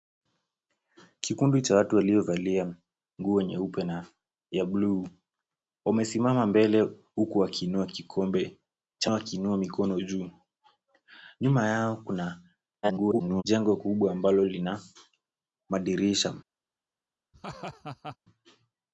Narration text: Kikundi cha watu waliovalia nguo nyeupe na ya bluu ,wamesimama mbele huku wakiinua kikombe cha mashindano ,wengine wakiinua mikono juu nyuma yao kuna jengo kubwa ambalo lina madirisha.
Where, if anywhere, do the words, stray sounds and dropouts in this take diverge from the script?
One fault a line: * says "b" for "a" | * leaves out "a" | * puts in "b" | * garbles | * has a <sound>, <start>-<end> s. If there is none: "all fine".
* leaves out "mashindano wengine"
* garbles
* has a laugh, 17.3-18.2 s